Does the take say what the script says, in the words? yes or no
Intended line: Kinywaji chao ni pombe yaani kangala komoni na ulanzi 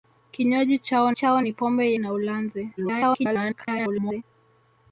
no